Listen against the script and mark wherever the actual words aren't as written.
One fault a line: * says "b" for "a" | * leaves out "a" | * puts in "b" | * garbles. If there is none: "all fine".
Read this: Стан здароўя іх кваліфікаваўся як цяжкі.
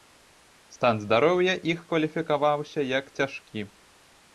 all fine